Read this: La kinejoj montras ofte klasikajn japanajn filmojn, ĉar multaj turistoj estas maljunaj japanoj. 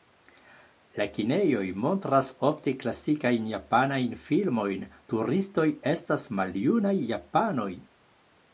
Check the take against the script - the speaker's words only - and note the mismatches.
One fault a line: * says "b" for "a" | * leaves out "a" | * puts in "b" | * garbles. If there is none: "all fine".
* leaves out "ĉar multaj"